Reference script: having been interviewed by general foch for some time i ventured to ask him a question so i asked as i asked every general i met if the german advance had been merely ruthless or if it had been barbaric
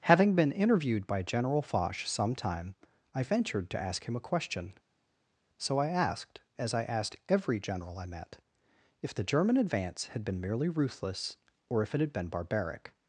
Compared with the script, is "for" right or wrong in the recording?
wrong